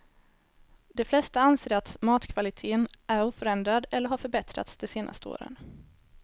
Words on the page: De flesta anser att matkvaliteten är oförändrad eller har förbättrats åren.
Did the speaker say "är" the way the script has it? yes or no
yes